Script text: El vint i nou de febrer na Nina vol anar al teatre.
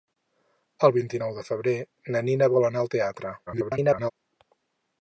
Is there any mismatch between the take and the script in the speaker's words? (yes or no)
yes